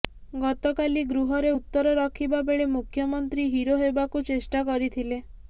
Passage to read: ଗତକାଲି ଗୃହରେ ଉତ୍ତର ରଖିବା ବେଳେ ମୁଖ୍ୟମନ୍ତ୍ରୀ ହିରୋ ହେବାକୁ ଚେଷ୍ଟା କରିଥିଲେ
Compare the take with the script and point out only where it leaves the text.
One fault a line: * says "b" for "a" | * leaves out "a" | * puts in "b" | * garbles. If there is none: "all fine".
all fine